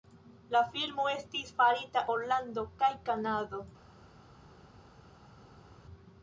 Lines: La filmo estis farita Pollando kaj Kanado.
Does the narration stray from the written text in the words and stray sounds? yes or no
no